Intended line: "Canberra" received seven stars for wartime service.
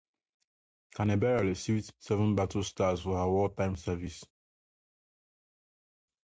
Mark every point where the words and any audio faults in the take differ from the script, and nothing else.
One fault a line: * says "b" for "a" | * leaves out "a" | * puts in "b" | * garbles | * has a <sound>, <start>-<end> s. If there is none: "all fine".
* puts in "battle"
* puts in "her"